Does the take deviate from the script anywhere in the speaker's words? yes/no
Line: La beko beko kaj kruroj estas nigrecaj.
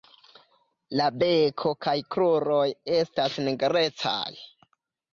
yes